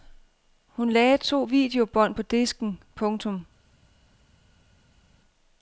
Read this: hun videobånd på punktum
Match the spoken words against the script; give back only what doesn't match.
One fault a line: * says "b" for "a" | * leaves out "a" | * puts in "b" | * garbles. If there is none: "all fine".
* puts in "lagde to"
* puts in "disken"